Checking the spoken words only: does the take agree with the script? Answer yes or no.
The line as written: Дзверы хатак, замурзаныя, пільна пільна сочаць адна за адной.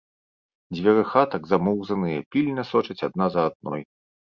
no